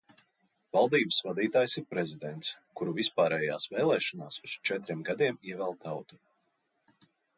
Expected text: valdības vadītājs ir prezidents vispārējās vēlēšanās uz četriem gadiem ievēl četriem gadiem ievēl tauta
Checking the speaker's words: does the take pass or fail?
fail